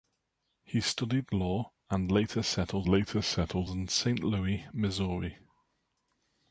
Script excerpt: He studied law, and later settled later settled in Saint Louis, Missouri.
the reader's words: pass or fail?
pass